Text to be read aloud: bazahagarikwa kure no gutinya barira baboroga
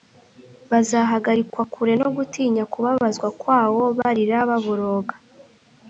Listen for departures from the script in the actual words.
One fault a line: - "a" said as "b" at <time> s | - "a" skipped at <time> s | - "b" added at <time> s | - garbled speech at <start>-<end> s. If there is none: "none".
- "kubabazwa kwawo" added at 2.7 s